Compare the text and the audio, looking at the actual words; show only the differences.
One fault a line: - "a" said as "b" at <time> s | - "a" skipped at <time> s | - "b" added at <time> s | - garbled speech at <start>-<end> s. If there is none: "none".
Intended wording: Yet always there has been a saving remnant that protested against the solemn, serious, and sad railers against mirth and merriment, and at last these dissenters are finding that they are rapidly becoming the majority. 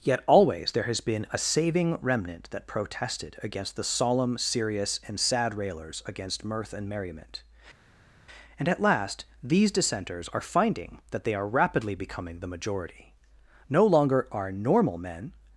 - "No longer are normal men" added at 13.7 s